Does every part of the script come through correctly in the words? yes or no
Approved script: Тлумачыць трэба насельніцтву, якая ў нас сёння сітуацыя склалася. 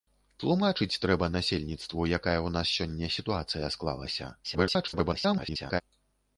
no